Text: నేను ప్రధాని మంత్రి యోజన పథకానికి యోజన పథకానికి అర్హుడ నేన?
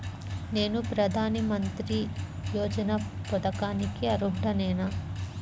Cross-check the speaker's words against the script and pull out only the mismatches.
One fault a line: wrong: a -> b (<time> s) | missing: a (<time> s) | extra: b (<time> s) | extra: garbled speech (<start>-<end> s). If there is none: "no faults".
missing: యోజన పథకానికి (4.1 s)